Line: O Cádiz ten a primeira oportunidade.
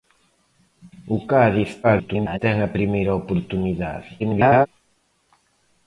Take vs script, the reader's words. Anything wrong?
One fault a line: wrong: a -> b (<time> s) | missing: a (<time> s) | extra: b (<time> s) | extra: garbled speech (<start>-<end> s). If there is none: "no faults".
extra: garbled speech (1.8-2.4 s)
extra: garbled speech (4.2-4.7 s)